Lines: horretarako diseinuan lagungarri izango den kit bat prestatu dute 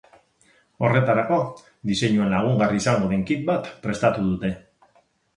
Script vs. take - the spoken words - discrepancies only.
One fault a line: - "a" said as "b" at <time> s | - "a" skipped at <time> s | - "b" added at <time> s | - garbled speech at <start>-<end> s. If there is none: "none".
none